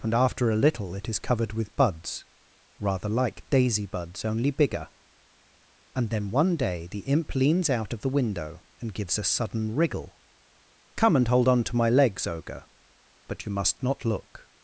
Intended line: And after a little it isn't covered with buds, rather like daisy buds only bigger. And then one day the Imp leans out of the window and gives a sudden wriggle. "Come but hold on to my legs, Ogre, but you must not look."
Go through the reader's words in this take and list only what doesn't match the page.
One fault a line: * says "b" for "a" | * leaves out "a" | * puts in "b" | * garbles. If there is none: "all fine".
* says "is" for "isn't"
* says "and" for "but"